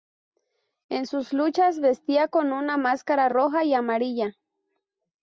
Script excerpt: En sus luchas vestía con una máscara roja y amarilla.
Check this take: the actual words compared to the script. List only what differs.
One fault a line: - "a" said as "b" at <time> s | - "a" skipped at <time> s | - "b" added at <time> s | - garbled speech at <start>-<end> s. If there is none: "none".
none